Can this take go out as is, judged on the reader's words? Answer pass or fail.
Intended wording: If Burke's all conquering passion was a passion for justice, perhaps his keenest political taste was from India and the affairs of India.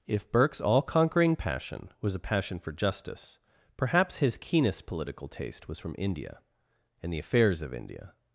pass